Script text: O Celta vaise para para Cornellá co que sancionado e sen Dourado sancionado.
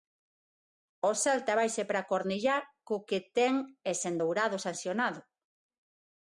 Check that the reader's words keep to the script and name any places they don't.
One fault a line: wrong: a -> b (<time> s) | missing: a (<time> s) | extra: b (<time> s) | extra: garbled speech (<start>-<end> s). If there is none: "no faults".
missing: para (2.1 s)
wrong: sancionado -> ten (3.4 s)